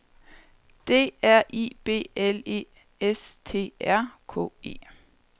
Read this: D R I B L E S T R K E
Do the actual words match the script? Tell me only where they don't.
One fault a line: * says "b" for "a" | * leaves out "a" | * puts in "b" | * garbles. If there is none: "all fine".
all fine